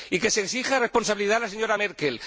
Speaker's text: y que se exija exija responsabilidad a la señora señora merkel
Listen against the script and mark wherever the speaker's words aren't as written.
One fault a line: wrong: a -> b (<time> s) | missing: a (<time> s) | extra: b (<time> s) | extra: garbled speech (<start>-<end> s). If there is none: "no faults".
missing: exija (0.8 s)
missing: señora (1.8 s)